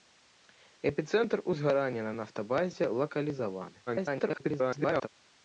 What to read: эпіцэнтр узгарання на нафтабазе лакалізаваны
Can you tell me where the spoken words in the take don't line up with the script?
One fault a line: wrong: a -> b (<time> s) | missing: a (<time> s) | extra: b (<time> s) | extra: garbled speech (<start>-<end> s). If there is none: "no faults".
extra: garbled speech (3.9-5.1 s)